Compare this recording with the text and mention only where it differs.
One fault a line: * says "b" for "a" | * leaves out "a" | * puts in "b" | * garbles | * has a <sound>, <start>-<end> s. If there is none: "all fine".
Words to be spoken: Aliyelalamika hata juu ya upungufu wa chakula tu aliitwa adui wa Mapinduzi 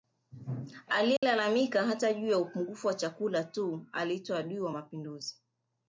* has a dropout, 1.2-1.2 s